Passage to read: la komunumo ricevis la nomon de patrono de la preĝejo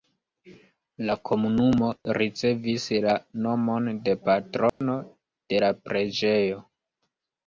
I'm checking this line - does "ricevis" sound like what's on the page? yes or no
yes